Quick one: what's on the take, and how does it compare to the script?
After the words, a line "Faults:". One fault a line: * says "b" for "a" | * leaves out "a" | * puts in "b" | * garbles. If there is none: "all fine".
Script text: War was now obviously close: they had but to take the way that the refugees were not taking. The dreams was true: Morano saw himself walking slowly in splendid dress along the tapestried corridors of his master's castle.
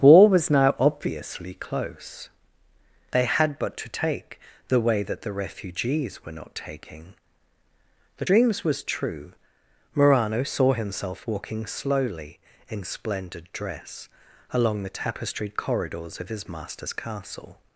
War was now obviously close: they had but to take the way that the refugees were not taking. The dreams was true: Morano saw himself walking slowly in splendid dress along the tapestried corridors of his master's castle.
Faults:
all fine